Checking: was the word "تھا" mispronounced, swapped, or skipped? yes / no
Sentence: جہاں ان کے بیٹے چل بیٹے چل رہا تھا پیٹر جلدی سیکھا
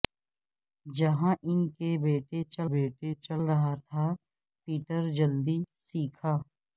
no